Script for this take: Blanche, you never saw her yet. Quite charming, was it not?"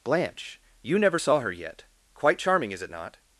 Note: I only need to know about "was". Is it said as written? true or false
false